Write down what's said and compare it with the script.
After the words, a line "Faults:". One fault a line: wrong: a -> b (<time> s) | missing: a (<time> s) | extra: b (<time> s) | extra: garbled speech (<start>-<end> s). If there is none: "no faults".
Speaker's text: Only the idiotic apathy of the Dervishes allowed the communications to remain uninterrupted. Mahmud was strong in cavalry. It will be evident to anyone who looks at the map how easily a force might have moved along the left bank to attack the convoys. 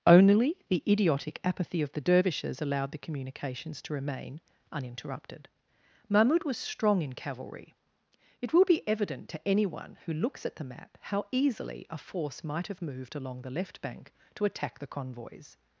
Only the idiotic apathy of the Dervishes allowed the communications to remain uninterrupted. Mahmud was strong in cavalry. It will be evident to anyone who looks at the map how easily a force might have moved along the left bank to attack the convoys.
Faults:
no faults